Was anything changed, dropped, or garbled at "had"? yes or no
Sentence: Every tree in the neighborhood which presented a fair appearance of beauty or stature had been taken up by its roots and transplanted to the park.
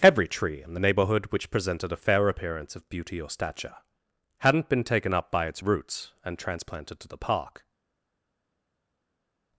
yes